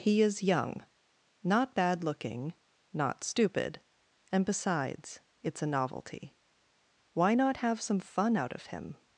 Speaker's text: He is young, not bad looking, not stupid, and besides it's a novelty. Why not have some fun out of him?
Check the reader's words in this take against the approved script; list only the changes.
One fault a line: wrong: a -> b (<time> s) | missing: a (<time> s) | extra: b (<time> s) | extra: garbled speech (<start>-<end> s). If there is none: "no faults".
no faults